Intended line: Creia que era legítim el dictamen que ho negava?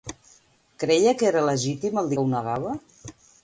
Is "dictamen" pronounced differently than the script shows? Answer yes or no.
yes